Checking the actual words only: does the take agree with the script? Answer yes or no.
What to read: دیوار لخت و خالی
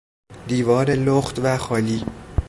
yes